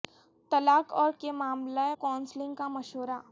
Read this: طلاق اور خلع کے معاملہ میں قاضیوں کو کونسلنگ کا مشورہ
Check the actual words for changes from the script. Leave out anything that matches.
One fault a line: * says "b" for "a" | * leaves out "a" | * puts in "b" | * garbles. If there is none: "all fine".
* leaves out "خلع"
* leaves out "میں قاضیوں کو"